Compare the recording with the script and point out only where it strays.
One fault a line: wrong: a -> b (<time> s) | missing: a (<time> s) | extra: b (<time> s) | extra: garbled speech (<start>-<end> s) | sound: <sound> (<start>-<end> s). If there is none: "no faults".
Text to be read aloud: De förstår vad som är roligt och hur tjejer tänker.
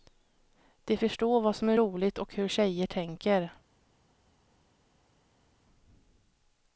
no faults